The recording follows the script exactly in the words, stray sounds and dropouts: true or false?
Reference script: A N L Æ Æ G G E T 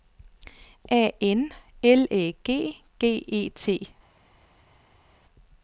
false